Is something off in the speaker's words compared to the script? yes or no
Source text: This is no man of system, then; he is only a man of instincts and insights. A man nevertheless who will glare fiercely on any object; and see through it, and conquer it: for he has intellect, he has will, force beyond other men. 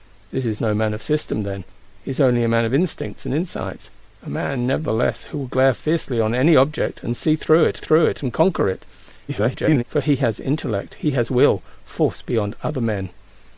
yes